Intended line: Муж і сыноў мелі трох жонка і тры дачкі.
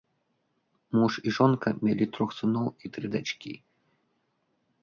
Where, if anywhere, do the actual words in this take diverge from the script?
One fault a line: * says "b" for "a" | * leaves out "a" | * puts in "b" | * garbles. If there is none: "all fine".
* says "жонка" for "сыноў"
* says "сыноў" for "жонка"